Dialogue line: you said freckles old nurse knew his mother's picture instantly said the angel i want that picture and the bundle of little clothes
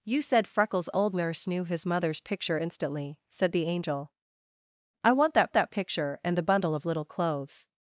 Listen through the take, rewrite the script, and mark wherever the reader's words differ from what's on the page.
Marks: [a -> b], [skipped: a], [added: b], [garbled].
you said freckles old nurse knew his mother's picture instantly said the angel i want that [added: that] picture and the bundle of little clothes